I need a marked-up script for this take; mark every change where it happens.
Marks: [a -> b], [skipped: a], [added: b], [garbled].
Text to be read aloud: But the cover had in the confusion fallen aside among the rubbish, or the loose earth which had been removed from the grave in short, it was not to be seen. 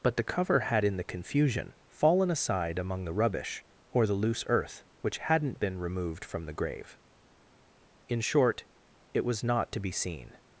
But the cover had in the confusion fallen aside among the rubbish, or the loose earth which [had -> hadn't] been removed from the grave in short, it was not to be seen.